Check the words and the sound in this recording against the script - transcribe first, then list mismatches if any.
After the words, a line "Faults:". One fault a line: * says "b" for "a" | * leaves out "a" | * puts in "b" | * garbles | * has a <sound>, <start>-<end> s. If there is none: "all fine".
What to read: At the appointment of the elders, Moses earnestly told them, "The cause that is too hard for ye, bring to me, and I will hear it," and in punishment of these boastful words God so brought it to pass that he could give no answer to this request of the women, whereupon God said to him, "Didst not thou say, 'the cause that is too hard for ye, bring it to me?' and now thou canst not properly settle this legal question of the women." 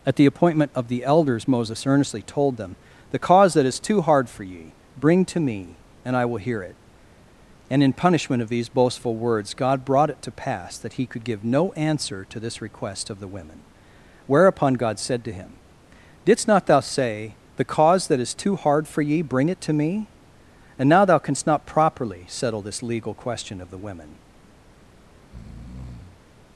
At the appointment of the elders, Moses earnestly told them, "The cause that is too hard for ye, bring to me, and I will hear it," and in punishment of these boastful words God brought it to pass that he could give no answer to this request of the women, whereupon God said to him, "Didst not thou say, 'the cause that is too hard for ye, bring it to me?' and now thou canst not properly settle this legal question of the women."
Faults:
* leaves out "so"
* has a breath, 25.2-26.2 s